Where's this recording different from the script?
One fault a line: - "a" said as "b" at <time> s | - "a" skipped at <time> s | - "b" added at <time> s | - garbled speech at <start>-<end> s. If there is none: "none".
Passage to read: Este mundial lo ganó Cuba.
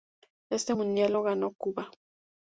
none